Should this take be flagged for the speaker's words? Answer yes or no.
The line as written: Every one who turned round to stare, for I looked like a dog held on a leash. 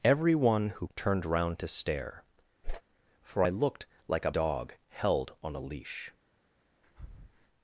no